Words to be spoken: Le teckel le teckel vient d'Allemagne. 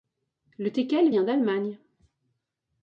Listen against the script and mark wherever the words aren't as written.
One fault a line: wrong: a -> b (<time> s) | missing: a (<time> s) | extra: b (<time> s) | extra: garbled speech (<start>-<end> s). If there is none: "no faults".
missing: le teckel (1.1 s)